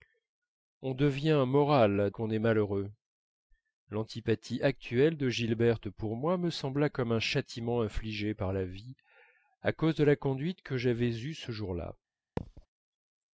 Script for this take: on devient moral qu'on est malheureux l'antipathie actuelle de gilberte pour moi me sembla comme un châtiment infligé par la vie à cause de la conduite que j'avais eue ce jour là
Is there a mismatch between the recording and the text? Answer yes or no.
no